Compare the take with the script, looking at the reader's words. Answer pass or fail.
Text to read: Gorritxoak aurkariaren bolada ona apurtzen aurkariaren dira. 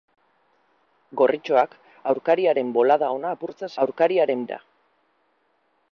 pass